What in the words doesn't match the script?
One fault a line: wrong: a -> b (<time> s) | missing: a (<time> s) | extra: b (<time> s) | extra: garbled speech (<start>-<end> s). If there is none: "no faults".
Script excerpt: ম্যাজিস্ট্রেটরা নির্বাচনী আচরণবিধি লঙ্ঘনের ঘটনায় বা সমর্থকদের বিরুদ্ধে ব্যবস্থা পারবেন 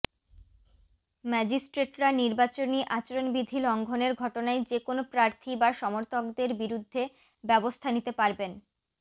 extra: যেকোনো প্রার্থী (4.7 s)
extra: নিতে (7.9 s)